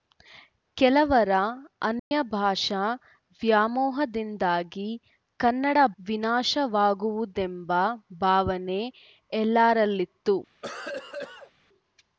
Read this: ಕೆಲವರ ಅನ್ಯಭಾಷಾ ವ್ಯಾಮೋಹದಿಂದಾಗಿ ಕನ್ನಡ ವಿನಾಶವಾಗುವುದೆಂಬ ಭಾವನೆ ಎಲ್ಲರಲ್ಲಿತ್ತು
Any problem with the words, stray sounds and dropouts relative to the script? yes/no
yes